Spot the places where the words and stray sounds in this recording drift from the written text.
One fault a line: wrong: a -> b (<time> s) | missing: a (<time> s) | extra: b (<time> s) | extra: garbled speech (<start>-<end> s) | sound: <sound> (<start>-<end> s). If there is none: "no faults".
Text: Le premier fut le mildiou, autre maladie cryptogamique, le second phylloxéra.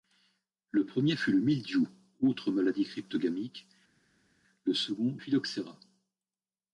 no faults